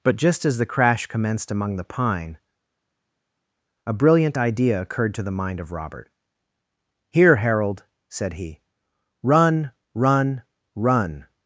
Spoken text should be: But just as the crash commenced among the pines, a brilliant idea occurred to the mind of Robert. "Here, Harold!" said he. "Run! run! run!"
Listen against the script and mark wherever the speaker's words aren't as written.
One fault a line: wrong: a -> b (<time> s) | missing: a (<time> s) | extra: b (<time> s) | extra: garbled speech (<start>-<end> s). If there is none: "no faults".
wrong: pines -> pine (1.8 s)